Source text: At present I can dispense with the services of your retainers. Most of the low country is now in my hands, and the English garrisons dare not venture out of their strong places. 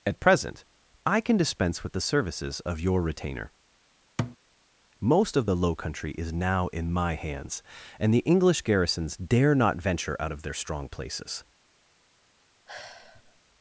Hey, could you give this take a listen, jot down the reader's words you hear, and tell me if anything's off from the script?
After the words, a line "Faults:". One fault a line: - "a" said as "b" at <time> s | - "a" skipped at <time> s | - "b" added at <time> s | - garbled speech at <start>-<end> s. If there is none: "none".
At present I can dispense with the services of your retainer. Most of the low country is now in my hands, and the English garrisons dare not venture out of their strong places.
Faults:
- "retainers" said as "retainer" at 3.0 s